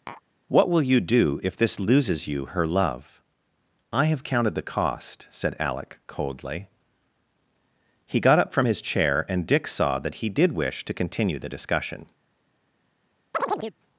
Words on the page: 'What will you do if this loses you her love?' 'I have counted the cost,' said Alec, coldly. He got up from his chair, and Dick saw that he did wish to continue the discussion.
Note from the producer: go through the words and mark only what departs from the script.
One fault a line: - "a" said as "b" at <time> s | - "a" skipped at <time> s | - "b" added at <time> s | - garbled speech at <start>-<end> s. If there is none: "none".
none